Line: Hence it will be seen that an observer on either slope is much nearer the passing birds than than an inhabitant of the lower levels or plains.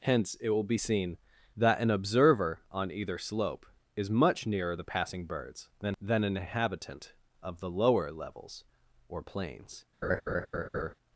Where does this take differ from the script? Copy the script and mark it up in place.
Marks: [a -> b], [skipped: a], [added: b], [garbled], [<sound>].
Hence it will be seen that an observer on either slope is much nearer the passing birds than than an inhabitant of the lower levels or plains. [laugh]